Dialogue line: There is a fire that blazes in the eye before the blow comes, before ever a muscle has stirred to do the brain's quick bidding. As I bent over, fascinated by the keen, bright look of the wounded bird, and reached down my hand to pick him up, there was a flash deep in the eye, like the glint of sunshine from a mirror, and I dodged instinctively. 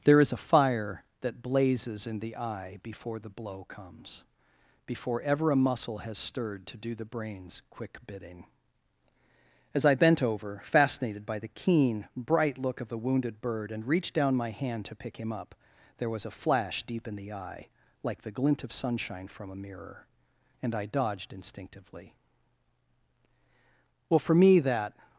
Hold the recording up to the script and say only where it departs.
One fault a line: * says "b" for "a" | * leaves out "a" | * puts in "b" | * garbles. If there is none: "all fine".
* puts in "Well for me that"